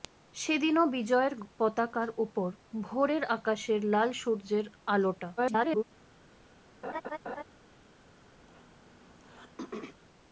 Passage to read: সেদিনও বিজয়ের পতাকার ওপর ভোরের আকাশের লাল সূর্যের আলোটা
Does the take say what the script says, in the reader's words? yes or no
no